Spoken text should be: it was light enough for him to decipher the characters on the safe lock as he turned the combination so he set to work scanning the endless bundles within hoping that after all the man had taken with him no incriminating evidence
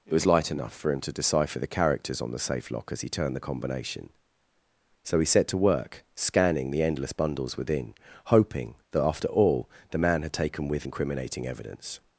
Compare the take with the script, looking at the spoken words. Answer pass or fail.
fail